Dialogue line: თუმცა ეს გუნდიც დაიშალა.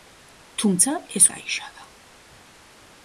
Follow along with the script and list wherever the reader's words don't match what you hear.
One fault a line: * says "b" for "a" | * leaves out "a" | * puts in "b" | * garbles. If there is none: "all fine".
* leaves out "გუნდიც"